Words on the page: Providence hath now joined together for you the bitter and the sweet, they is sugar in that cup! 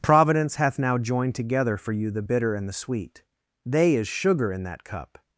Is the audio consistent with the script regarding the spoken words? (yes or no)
yes